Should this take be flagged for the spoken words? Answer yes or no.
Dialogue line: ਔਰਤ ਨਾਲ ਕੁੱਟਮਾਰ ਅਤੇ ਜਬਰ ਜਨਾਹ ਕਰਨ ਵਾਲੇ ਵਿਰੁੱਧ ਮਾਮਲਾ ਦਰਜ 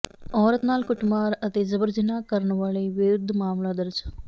no